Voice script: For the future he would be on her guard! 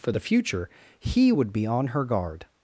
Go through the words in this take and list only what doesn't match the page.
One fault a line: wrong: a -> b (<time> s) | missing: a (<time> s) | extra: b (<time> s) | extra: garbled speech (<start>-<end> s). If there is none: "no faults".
no faults